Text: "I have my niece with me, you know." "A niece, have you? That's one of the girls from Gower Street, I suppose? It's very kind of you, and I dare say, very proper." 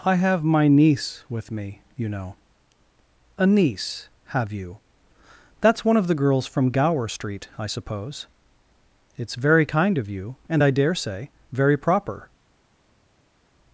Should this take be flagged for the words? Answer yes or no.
no